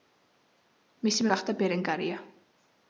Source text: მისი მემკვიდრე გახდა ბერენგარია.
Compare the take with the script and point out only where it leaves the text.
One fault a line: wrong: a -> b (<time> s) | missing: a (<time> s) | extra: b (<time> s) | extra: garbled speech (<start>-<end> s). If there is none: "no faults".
missing: მემკვიდრე (1.3 s)